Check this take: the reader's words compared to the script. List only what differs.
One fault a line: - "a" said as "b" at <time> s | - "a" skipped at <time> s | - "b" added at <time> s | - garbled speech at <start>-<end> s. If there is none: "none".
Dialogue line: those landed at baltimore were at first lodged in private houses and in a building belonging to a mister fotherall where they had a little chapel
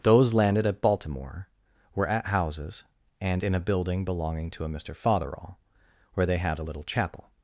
- "first lodged in private" skipped at 2.3 s